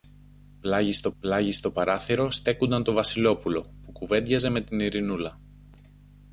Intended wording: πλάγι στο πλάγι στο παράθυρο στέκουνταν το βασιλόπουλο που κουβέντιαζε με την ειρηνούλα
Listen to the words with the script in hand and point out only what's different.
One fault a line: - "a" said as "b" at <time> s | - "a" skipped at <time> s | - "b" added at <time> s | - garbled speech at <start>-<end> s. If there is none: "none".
none